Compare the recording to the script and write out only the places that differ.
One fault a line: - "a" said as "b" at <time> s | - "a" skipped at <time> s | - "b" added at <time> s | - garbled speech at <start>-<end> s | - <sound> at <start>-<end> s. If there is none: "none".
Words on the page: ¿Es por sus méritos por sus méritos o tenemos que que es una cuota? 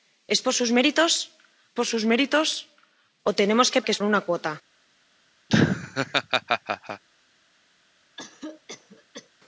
- laugh at 5.5-7.0 s
- cough at 8.2-9.3 s